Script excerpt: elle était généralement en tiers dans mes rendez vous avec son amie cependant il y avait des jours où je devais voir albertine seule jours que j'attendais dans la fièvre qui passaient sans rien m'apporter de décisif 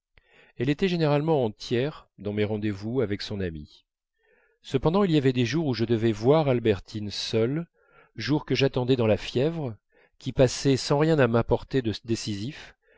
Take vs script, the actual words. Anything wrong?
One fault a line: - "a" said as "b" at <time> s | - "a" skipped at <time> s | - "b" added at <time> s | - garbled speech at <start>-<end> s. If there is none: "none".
none